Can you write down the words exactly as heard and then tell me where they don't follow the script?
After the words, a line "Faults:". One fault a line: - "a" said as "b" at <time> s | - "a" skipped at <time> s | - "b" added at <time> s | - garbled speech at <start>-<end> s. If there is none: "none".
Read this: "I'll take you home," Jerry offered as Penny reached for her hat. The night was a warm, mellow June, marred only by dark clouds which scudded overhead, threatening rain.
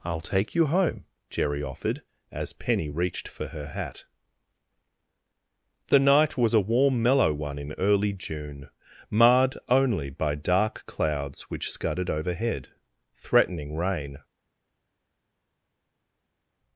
"I'll take you home," Jerry offered as Penny reached for her hat. The night was a warm, mellow one in early June, marred only by dark clouds which scudded overhead, threatening rain.
Faults:
- "one in early" added at 7.3 s